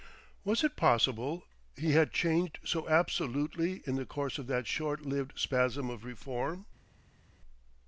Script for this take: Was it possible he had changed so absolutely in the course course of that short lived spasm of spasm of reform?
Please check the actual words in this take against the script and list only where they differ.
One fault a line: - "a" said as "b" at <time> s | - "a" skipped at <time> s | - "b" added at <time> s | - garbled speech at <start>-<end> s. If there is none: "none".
- "course" skipped at 4.4 s
- "spasm of" skipped at 6.0 s